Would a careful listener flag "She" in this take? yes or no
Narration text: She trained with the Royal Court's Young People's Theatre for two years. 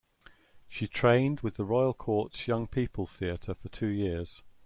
no